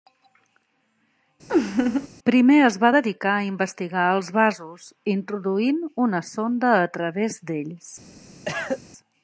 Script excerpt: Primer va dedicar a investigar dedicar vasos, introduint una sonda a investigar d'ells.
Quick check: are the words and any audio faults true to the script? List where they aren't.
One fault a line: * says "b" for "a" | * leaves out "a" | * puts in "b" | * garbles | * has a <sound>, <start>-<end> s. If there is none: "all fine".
* has a laugh, 1.5-2.1 s
* puts in "es"
* says "els" for "dedicar"
* says "través" for "investigar"
* has a cough, 8.5-8.8 s